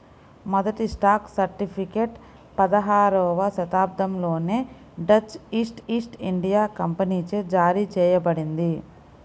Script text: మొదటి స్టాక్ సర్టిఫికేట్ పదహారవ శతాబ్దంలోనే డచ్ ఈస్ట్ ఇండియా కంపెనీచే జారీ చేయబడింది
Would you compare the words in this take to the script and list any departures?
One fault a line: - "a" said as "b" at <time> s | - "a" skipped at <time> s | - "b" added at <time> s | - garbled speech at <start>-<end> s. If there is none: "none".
- "ఈస్ట్" added at 5.9 s